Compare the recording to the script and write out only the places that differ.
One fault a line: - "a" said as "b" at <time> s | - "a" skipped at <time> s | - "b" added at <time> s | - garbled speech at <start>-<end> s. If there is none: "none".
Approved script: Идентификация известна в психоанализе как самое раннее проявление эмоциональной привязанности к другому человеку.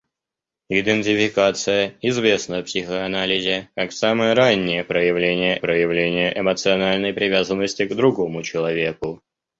- "проявление" added at 5.6 s